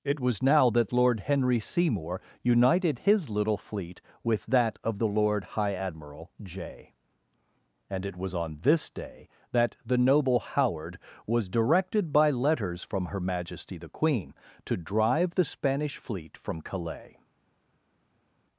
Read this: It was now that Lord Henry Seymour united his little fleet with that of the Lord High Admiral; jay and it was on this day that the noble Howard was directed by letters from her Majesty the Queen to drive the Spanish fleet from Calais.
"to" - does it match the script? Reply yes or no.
yes